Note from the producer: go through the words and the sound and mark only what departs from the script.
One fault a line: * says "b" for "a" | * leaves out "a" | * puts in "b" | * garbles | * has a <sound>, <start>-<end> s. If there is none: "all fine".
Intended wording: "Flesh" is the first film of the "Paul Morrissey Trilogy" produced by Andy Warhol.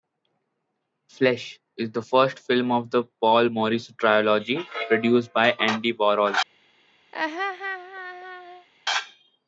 * has a laugh, 7.1-8.7 s